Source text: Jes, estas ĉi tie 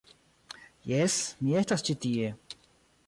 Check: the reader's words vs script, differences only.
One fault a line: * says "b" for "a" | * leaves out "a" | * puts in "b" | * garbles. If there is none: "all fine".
* puts in "mi"